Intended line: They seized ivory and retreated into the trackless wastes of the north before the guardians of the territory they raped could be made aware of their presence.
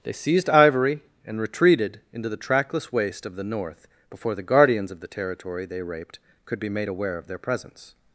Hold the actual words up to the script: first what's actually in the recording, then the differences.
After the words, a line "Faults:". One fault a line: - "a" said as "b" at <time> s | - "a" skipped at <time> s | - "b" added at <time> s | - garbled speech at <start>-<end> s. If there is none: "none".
They seized ivory and retreated into the trackless waste of the north before the guardians of the territory they raped could be made aware of their presence.
Faults:
- "wastes" said as "waste" at 2.9 s